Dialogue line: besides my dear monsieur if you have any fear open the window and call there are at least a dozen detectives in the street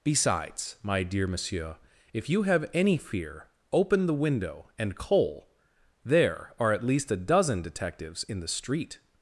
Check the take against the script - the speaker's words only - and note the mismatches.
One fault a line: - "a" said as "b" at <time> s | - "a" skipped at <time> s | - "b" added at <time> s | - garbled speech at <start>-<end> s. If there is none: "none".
- "call" said as "coal" at 5.0 s